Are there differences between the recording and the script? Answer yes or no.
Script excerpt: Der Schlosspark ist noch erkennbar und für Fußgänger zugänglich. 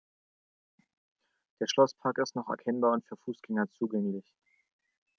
no